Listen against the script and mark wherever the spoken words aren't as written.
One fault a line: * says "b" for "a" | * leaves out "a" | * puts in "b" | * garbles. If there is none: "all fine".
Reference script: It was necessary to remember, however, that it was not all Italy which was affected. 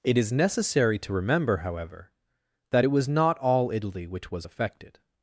* says "is" for "was"